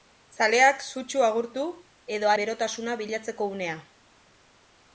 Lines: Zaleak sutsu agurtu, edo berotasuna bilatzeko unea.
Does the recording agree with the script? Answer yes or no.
yes